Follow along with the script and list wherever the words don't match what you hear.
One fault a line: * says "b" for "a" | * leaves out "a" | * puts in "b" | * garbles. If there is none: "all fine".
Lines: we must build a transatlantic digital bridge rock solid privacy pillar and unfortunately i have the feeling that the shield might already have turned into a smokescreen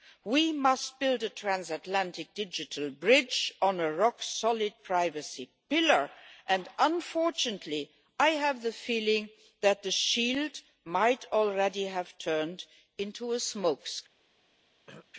* puts in "on a"